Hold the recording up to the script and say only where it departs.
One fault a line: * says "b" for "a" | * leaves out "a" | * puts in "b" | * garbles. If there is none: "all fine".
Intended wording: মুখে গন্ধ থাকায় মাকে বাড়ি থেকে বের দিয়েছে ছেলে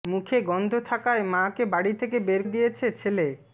all fine